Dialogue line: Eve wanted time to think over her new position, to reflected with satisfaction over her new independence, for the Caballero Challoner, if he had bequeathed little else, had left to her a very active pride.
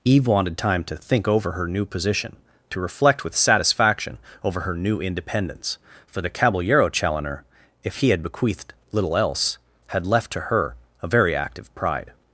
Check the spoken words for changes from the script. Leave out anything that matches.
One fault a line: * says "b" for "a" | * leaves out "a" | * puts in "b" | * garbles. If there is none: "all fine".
* says "reflect" for "reflected"